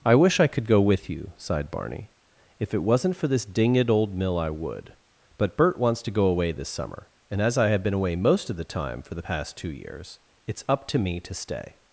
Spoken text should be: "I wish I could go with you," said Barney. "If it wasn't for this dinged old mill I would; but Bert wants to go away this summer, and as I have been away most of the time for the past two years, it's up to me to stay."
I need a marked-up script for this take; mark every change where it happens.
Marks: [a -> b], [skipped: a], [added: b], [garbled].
"I wish I could go with you," [said -> sighed] Barney. "If it wasn't for this dinged old mill I would; but Bert wants to go away this summer, and as I have been away most of the time for the past two years, it's up to me to stay."